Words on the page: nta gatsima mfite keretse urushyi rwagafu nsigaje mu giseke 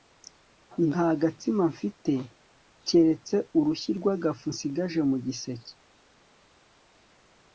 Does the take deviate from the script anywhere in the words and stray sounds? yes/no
no